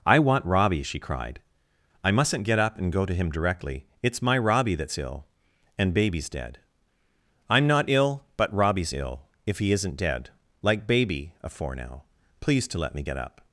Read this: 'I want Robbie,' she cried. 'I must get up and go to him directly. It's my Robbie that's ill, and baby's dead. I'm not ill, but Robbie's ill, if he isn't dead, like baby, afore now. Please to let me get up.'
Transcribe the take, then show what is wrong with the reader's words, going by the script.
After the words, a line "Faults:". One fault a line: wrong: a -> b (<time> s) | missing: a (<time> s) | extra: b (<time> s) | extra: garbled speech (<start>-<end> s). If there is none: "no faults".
'I want Robbie,' she cried. 'I mustn't get up and go to him directly. It's my Robbie that's ill, and baby's dead. I'm not ill, but Robbie's ill, if he isn't dead, like baby, afore now. Please to let me get up.'
Faults:
wrong: must -> mustn't (2.1 s)